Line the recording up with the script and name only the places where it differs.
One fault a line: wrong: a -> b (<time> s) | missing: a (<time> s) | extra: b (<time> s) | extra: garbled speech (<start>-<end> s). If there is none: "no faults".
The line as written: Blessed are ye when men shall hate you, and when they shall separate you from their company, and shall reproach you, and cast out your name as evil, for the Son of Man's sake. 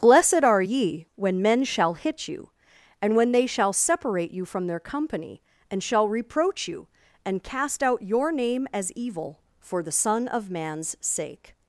wrong: hate -> hit (1.9 s)